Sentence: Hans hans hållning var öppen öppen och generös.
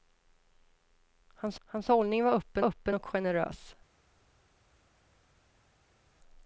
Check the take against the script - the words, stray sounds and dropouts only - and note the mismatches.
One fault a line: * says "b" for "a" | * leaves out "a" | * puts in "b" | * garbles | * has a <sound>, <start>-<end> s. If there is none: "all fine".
all fine